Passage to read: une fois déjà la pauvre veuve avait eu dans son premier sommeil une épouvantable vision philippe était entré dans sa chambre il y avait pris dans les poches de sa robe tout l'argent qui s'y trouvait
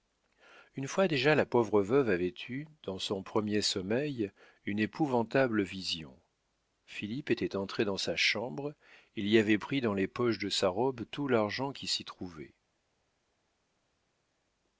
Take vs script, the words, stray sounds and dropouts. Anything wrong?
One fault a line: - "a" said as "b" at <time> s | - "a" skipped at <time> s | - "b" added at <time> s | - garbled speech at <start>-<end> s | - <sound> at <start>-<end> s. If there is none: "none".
none